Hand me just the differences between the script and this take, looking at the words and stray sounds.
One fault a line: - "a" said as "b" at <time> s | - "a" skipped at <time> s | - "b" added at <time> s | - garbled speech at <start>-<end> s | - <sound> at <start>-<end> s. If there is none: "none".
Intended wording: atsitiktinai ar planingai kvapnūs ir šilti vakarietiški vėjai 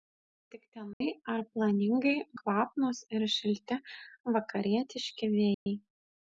- dropout at 0.9-1.0 s
- dropout at 5.5-5.7 s